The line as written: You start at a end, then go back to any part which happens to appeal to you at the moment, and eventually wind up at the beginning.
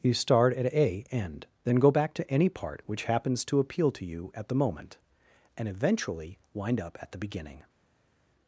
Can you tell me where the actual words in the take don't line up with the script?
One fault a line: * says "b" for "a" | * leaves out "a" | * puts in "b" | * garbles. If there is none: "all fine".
all fine